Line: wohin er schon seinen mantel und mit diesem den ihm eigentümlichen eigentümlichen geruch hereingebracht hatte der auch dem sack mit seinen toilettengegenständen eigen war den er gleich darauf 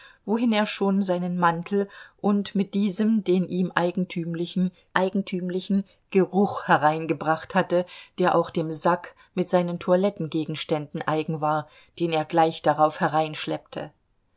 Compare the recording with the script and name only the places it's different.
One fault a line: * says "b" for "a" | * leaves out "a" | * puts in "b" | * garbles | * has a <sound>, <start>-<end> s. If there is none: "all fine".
all fine